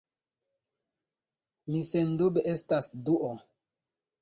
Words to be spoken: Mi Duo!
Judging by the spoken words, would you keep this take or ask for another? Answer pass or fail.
fail